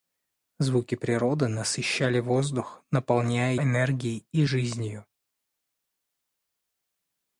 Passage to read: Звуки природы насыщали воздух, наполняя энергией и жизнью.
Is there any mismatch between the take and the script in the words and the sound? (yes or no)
no